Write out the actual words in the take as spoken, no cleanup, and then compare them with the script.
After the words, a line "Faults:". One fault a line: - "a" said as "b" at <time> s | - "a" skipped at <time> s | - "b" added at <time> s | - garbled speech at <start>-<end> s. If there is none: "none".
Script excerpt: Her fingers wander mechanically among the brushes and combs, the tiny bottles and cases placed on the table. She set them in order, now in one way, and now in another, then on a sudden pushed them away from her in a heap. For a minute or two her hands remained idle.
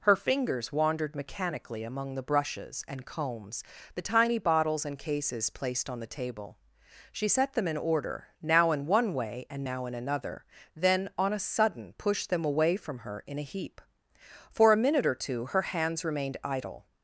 Her fingers wandered mechanically among the brushes and combs, the tiny bottles and cases placed on the table. She set them in order, now in one way, and now in another, then on a sudden pushed them away from her in a heap. For a minute or two her hands remained idle.
Faults:
- "wander" said as "wandered" at 0.7 s